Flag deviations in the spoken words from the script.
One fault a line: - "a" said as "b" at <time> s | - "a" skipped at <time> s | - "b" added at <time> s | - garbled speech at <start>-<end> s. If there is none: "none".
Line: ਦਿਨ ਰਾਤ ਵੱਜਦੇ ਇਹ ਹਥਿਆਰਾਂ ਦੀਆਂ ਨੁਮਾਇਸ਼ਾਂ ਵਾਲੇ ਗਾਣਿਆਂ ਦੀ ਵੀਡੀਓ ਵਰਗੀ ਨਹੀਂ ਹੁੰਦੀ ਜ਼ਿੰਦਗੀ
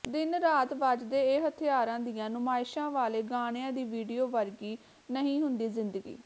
none